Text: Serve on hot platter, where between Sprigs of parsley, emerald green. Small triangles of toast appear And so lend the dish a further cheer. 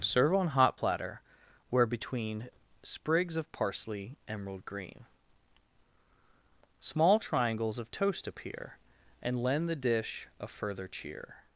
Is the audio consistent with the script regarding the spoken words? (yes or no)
no